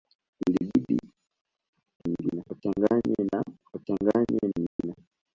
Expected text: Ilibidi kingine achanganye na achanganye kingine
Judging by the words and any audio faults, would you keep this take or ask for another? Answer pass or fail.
fail